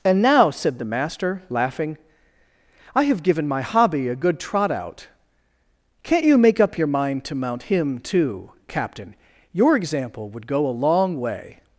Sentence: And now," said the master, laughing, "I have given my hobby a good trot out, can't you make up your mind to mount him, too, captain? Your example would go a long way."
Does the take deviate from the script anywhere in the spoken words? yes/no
no